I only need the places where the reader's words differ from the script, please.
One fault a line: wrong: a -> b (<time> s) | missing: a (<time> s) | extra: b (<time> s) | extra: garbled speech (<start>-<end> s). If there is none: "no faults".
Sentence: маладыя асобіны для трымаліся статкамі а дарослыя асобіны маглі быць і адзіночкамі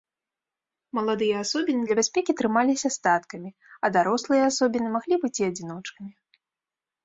extra: бяспекі (2.0 s)